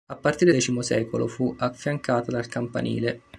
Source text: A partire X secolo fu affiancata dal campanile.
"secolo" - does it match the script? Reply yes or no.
yes